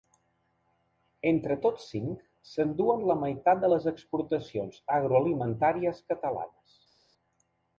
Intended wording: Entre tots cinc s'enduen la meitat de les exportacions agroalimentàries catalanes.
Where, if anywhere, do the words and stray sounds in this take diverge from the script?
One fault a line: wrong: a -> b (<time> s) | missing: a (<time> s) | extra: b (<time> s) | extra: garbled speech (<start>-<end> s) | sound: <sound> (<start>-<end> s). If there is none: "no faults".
no faults